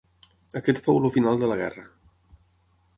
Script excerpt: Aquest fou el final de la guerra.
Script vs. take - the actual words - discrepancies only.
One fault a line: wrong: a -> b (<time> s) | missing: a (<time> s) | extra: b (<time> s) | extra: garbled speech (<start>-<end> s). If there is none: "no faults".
no faults